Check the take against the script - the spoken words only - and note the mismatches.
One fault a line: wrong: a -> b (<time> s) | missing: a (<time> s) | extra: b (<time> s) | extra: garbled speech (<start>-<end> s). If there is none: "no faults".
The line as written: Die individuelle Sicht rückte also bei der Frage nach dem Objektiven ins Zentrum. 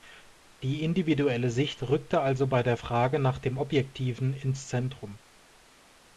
no faults